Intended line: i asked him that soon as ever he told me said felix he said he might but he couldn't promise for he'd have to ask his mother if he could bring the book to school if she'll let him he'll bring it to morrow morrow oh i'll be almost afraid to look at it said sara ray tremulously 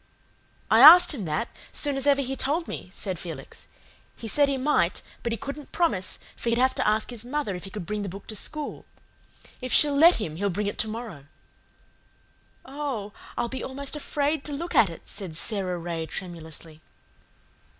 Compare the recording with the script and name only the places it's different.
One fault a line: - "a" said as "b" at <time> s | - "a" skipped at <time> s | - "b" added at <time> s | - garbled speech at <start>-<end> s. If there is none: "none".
- "morrow" skipped at 11.2 s